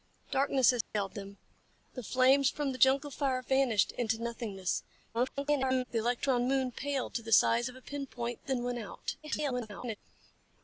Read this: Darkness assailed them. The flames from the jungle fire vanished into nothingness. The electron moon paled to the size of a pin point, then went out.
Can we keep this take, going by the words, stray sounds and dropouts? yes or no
no